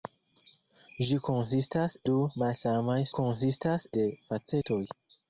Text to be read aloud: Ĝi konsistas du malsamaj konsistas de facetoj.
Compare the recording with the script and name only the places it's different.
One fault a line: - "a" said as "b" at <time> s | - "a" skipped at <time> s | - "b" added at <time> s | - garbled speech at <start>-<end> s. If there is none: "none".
none